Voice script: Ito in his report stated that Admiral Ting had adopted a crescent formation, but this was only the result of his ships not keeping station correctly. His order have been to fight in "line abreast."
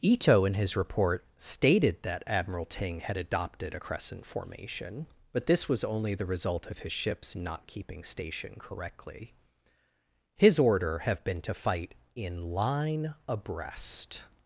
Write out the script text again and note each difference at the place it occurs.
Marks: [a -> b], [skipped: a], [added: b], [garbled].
Ito in his report stated that Admiral Ting had adopted a crescent formation, but this was only the result of his ships not keeping station correctly. His order have been to fight in "line abreast."